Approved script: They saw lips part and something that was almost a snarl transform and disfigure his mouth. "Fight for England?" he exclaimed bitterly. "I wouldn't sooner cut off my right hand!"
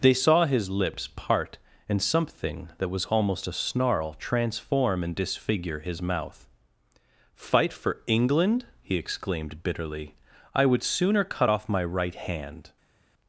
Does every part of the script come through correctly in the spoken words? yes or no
no